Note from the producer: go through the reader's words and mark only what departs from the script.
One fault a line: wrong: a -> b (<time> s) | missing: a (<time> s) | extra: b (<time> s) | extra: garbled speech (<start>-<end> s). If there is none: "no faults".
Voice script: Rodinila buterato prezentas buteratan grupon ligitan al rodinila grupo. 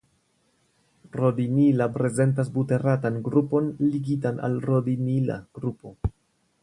missing: buterato (1.9 s)